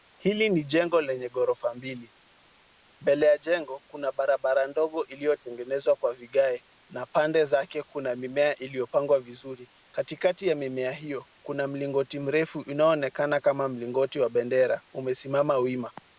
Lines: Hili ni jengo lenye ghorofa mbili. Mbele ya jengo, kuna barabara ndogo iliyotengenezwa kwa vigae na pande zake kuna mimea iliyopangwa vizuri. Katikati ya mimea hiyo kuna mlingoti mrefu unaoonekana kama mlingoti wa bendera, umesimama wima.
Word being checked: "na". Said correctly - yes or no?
yes